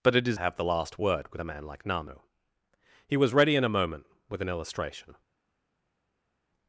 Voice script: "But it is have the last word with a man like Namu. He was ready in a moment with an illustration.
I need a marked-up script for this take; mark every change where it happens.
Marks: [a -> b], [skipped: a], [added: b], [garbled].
"But it is have the last word with a man like Namu. He was ready in a moment with an illustration.